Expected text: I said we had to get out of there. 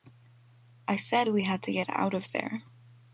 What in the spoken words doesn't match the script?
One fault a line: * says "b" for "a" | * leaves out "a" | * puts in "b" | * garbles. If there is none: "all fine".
all fine